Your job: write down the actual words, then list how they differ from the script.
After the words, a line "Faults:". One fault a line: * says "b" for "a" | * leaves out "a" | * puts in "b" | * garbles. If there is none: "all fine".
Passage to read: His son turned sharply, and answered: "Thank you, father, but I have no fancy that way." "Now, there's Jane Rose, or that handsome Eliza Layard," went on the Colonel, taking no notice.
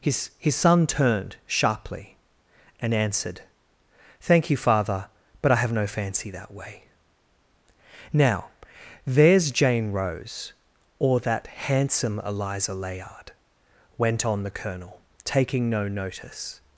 His his son turned sharply, and answered: "Thank you, father, but I have no fancy that way." "Now, there's Jane Rose, or that handsome Eliza Layard," went on the Colonel, taking no notice.
Faults:
* puts in "his"